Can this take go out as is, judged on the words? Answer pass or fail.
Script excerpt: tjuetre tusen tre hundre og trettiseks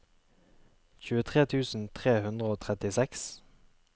pass